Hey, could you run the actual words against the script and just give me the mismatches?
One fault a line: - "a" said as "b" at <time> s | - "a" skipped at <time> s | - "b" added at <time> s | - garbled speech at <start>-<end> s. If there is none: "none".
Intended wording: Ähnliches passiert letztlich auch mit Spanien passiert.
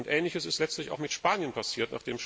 - "passiert" said as "ist" at 0.5 s